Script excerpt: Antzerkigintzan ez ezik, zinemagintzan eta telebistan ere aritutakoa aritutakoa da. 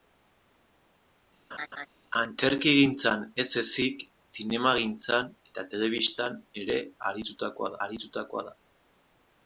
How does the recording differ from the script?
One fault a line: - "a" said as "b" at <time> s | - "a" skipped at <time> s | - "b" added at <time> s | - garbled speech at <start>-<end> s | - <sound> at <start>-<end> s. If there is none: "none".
- laugh at 1.5-1.9 s